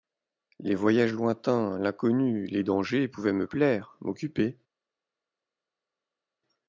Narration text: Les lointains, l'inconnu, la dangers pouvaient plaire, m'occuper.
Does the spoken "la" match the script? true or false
false